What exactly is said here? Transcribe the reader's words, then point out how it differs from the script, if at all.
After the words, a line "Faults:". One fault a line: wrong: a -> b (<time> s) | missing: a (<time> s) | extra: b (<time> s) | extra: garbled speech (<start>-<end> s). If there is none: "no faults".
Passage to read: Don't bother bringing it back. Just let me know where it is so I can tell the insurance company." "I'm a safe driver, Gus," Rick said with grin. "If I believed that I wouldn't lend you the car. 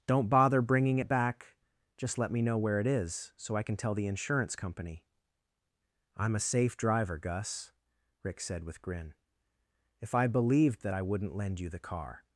Don't bother bringing it back. Just let me know where it is so I can tell the insurance company." "I'm a safe driver, Gus," Rick said with grin. "If I believed that I wouldn't lend you the car.
Faults:
no faults